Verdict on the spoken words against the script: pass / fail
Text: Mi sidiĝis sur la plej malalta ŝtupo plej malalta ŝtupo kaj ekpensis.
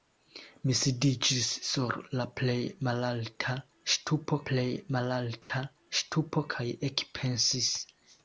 pass